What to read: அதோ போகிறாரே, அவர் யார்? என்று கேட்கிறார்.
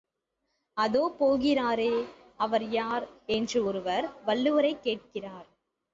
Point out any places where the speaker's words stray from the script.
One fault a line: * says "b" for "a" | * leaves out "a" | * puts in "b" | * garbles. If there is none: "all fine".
* puts in "ஒருவர் வள்ளுவரைக்"